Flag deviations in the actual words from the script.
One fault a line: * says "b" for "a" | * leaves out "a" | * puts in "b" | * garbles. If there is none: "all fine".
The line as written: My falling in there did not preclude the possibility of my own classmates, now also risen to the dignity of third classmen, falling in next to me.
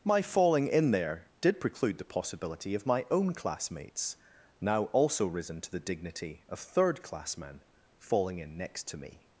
* leaves out "not"